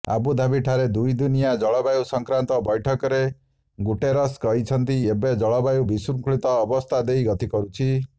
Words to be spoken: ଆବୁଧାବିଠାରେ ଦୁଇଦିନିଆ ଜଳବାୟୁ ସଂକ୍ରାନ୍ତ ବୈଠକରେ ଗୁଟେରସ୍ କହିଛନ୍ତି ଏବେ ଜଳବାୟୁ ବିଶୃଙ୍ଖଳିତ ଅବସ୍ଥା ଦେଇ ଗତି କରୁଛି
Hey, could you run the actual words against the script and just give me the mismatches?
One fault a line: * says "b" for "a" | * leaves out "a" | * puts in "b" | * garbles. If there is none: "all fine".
all fine